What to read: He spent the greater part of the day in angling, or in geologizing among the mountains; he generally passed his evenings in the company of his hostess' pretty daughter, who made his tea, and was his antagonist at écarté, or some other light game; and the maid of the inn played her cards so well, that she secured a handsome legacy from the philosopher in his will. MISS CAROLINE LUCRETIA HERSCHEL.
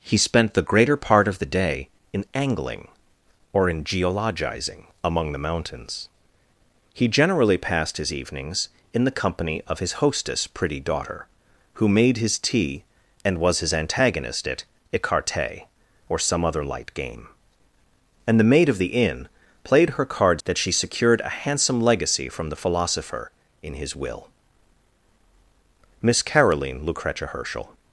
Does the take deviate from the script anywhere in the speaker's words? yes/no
yes